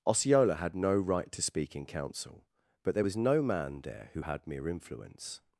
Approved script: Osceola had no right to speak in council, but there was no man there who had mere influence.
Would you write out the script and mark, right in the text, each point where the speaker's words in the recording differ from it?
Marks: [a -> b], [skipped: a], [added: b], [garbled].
Osceola had no right to speak in council, but there was no man there who had mere influence.